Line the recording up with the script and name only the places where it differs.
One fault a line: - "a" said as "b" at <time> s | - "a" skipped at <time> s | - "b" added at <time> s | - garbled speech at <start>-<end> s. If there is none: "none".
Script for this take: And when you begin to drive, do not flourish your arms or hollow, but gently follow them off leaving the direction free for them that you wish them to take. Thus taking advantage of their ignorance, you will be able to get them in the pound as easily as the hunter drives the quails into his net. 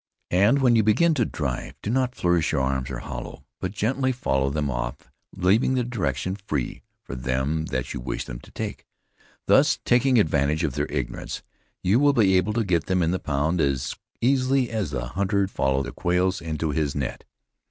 - "drives" said as "follow" at 15.4 s